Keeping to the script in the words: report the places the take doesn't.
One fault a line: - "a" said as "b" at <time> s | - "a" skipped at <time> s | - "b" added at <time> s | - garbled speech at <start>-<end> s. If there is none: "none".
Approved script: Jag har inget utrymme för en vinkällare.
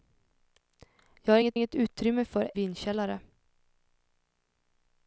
- "inget" added at 1.5 s
- "en" skipped at 2.5 s